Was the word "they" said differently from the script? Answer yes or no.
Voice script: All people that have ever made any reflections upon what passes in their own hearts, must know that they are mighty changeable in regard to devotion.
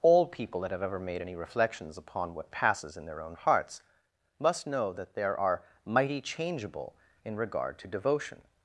yes